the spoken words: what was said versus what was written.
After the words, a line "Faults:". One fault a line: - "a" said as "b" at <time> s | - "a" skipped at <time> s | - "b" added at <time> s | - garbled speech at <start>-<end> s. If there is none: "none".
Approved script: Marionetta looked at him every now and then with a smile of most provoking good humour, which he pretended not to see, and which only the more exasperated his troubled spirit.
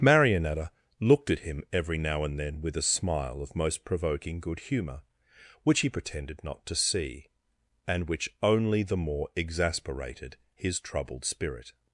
Marionetta looked at him every now and then with a smile of most provoking good humour, which he pretended not to see, and which only the more exasperated his troubled spirit.
Faults:
none